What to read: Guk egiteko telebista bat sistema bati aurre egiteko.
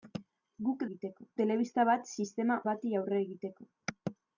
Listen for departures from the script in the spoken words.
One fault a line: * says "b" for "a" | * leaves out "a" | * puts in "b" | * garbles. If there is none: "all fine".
all fine